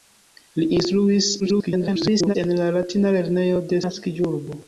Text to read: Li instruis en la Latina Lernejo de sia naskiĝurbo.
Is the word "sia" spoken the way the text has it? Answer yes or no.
no